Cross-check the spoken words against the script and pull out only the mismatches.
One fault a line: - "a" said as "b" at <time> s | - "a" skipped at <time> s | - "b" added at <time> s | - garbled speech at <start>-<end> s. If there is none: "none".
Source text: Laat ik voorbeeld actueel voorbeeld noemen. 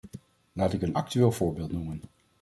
- "voorbeeld" said as "een" at 0.8 s